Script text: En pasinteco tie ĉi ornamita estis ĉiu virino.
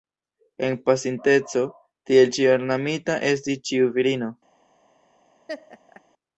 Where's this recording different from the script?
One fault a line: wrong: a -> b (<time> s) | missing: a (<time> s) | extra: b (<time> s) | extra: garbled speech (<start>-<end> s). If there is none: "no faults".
wrong: tie -> tiel (2.1 s)